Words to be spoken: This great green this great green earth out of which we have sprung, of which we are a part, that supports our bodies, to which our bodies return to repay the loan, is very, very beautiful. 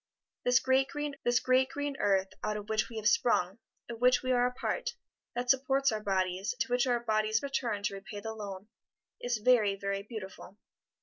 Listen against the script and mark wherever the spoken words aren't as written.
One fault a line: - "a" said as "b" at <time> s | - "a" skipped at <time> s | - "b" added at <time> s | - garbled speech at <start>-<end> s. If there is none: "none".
none